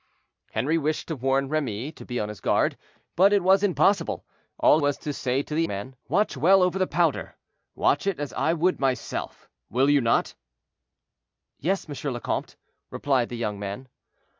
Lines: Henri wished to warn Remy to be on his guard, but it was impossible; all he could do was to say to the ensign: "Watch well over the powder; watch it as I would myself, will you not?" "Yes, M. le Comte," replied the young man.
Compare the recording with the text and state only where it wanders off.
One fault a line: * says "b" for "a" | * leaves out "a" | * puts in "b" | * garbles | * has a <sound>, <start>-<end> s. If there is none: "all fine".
* leaves out "he could do"
* says "man" for "ensign"